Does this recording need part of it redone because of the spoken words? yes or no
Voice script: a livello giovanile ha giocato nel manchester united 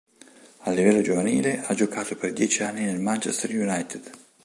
yes